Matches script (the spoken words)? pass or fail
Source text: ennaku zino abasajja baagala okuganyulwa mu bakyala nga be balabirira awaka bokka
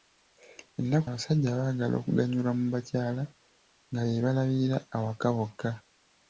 fail